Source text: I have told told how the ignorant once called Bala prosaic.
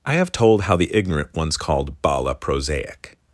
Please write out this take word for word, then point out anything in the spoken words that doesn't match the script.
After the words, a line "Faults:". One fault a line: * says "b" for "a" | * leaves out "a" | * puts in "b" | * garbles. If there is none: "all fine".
I have told how the ignorant once called Bala prosaic.
Faults:
* leaves out "told"